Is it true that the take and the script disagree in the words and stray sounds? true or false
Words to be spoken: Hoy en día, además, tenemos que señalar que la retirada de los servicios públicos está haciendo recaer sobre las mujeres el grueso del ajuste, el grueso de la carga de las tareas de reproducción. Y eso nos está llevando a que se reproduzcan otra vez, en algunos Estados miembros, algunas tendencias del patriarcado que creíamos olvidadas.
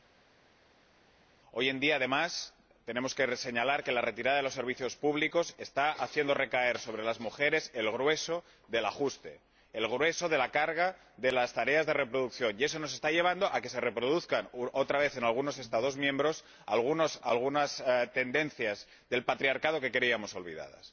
false